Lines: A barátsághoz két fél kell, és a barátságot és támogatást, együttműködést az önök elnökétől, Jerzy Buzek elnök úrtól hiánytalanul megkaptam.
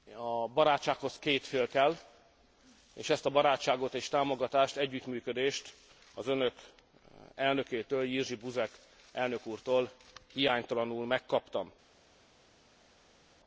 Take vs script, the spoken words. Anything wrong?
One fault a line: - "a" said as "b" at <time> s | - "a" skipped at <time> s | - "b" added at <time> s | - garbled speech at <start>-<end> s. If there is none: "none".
- "ezt" added at 3.1 s